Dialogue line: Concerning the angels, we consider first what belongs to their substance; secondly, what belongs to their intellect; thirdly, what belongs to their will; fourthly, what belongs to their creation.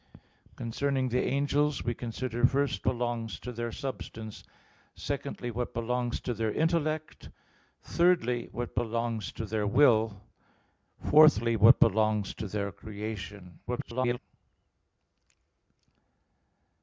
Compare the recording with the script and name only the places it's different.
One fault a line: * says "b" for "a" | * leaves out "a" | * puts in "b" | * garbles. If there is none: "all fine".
* leaves out "what"
* garbles